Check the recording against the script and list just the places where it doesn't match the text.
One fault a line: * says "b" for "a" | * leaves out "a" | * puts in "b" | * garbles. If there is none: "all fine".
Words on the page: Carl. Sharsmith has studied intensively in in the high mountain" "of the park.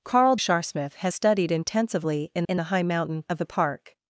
all fine